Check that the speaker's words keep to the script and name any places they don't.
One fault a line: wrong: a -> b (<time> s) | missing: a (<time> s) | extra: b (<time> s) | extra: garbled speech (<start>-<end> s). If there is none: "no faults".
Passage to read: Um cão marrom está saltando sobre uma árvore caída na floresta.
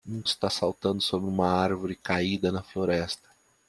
missing: cão marrom (0.2 s)